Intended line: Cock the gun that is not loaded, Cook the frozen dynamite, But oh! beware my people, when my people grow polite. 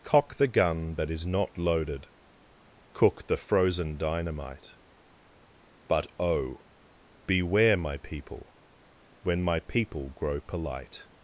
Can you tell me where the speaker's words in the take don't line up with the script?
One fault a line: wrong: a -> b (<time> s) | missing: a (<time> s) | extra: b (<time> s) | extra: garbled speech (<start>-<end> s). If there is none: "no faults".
no faults